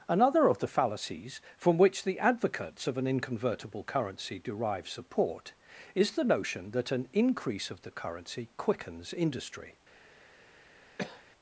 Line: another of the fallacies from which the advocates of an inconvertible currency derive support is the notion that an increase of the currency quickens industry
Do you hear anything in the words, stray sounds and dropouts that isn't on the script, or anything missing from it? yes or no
yes